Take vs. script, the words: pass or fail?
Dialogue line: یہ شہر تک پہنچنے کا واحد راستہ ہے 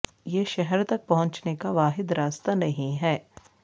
fail